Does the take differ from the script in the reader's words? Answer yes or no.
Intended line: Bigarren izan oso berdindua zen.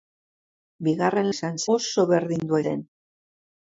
no